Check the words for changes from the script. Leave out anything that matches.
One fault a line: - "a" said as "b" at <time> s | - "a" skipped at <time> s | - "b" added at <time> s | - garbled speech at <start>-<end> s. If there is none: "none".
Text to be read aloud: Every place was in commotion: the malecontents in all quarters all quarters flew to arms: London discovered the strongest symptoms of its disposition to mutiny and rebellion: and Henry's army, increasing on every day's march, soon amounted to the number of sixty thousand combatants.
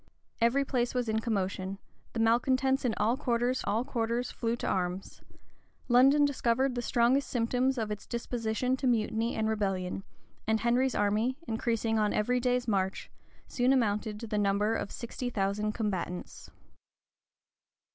none